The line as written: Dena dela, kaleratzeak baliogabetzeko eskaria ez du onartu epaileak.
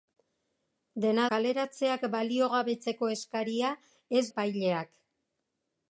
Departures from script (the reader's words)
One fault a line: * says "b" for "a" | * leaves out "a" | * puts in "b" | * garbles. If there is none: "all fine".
* leaves out "dela"
* leaves out "du onartu"